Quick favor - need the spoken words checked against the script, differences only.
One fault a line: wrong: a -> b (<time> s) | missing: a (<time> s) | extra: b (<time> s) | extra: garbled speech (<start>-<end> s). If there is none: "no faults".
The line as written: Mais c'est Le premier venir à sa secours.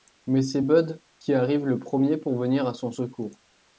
extra: Bud qui arrive (0.6 s)
extra: pour (2.1 s)
wrong: sa -> son (2.7 s)